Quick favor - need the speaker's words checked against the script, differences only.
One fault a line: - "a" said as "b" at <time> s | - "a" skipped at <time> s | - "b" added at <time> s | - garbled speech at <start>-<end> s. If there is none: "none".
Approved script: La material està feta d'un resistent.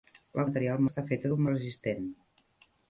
none